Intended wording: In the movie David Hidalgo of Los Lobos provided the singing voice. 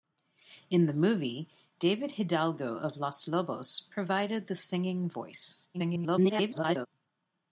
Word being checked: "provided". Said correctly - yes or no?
yes